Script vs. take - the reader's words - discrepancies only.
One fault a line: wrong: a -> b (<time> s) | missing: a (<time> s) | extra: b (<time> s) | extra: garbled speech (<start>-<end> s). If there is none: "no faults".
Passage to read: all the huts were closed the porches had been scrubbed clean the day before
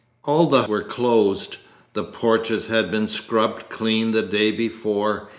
missing: huts (0.6 s)